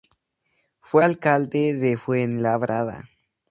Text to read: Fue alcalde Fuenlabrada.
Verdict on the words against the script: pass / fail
fail